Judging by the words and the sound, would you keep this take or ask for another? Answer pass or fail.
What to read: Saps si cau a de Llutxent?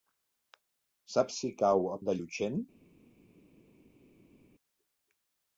pass